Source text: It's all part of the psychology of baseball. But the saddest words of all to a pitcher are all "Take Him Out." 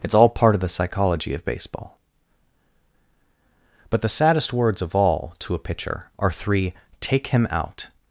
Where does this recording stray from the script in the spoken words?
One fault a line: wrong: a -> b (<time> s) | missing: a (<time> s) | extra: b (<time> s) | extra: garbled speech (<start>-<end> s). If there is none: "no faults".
wrong: all -> three (6.3 s)